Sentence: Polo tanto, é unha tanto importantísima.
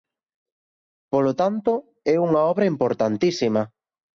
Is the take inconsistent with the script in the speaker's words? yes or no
yes